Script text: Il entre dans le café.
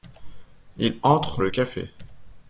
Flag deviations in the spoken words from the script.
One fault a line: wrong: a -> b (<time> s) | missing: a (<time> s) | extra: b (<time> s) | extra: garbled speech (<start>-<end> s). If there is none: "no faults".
missing: dans (1.4 s)